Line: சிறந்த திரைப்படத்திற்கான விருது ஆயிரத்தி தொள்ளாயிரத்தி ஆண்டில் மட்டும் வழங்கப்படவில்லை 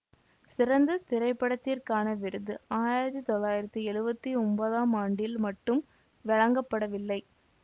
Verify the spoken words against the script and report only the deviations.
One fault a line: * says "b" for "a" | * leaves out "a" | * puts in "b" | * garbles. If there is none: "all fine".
* puts in "எழுவத்தி ஒன்பதாம்"